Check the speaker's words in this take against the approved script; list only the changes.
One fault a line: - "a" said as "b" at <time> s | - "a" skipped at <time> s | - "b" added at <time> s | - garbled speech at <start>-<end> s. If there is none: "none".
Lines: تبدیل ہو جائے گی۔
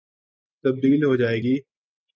none